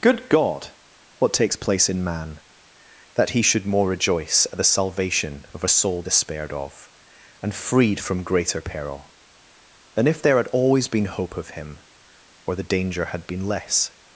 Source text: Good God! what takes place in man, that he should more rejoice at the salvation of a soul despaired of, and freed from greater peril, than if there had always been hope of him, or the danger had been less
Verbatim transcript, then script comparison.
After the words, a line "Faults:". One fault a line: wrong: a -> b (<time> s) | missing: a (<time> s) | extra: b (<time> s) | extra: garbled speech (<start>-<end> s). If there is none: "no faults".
Good God! what takes place in man, that he should more rejoice at the salvation of a soul despaired of, and freed from greater peril, than if there had always been hope of him, or the danger had been less
Faults:
no faults